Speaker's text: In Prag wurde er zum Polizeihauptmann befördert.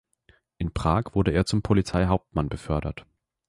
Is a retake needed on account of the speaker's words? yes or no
no